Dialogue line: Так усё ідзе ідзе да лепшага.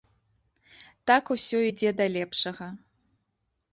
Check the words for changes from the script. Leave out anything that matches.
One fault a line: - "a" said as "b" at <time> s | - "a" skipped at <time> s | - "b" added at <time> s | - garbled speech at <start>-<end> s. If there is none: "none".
- "ідзе" skipped at 1.9 s